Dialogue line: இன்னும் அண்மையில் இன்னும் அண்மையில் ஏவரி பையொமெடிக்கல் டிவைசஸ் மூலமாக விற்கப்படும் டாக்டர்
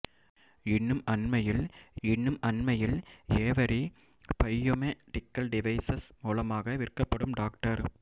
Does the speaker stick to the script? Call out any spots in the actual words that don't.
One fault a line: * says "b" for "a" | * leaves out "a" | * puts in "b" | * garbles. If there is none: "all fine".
all fine